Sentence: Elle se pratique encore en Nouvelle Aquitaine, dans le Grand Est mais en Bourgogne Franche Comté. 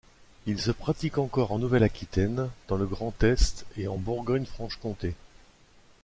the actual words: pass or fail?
fail